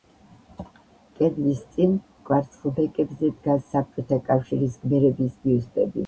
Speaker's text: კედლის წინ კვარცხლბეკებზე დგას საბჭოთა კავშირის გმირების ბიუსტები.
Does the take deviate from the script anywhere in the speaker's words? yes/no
no